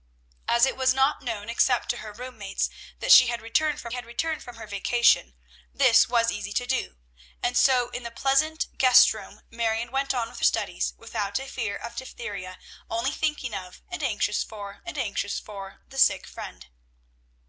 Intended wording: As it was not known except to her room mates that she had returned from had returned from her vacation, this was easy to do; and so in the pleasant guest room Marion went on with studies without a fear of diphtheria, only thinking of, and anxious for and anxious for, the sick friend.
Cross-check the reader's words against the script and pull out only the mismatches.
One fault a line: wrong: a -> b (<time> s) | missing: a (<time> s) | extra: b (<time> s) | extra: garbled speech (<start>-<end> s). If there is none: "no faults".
no faults